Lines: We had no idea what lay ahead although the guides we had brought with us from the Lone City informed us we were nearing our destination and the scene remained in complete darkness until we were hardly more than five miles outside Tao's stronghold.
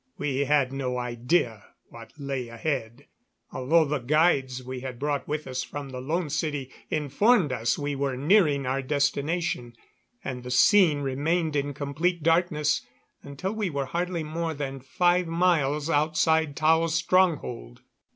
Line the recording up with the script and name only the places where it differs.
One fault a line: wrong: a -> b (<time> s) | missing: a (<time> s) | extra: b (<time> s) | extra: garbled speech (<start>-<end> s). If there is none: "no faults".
no faults